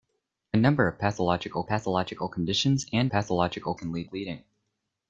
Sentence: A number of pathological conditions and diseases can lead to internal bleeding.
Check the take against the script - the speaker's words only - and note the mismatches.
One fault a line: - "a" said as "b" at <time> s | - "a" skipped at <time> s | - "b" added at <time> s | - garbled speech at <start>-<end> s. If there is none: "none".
- "pathological" added at 1.6 s
- "diseases" said as "pathological" at 3.1 s
- "to internal" skipped at 4.1 s